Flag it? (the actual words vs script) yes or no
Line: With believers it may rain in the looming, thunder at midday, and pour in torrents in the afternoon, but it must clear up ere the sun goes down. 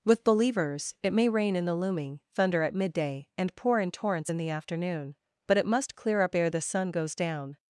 no